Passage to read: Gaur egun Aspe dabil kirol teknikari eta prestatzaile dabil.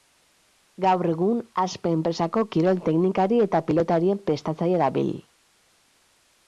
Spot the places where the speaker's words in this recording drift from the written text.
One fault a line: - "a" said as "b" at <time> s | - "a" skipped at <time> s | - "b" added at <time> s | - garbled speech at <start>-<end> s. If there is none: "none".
- "dabil" said as "enpresako" at 2.0 s
- "pilotarien" added at 3.7 s